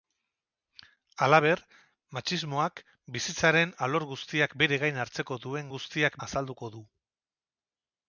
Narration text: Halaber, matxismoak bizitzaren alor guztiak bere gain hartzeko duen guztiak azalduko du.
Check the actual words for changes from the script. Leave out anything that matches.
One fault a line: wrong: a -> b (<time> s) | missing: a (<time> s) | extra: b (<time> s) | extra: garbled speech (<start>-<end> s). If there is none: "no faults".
no faults